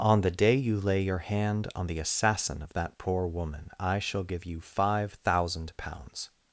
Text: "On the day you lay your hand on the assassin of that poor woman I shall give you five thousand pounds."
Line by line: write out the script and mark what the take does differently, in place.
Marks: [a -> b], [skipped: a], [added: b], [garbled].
"On the day you lay your hand on the assassin of that poor woman I shall give you five thousand pounds."